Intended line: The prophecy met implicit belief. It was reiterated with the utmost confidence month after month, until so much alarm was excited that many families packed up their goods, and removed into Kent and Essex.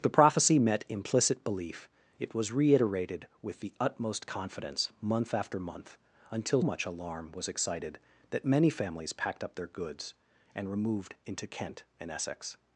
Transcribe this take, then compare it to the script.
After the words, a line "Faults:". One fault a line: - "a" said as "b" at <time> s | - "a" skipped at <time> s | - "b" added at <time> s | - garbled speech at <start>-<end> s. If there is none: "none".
The prophecy met implicit belief. It was reiterated with the utmost confidence month after month, until much alarm was excited that many families packed up their goods, and removed into Kent and Essex.
Faults:
- "so" skipped at 6.6 s